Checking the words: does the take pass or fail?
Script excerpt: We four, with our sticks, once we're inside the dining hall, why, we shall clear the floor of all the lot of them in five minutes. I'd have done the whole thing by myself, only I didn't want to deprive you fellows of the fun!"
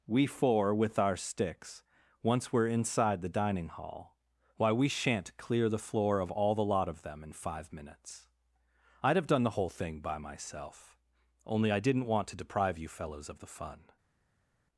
fail